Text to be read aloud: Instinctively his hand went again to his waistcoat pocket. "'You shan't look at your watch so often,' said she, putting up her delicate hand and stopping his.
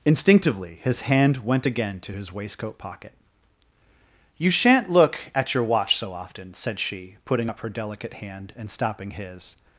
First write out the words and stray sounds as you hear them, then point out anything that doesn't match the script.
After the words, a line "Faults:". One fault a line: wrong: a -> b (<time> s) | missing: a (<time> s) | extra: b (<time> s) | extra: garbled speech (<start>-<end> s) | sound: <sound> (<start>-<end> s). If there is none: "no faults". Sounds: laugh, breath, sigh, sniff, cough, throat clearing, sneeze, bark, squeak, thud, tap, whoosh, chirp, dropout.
Instinctively his hand went again to his waistcoat pocket. "'You shan't look at your watch so often,' said she, putting up her delicate hand and stopping his.
Faults:
no faults